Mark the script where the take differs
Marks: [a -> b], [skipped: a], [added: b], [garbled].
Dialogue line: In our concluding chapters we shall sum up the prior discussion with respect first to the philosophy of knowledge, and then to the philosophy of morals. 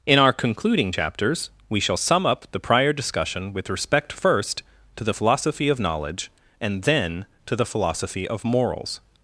In our concluding chapters we shall sum up the prior discussion with respect first to the philosophy of knowledge, and then to the philosophy of morals.